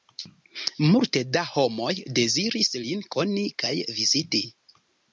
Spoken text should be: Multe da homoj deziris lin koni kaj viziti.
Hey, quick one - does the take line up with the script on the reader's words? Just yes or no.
yes